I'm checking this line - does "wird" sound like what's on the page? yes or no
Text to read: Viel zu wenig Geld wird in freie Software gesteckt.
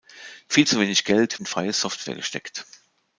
no